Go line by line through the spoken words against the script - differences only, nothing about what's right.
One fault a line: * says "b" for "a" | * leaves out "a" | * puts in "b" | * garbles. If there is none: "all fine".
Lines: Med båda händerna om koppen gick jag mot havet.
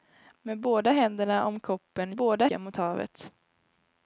* says "båda" for "gick"